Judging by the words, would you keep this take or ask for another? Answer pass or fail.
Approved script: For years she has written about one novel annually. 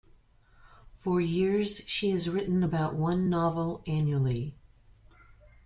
pass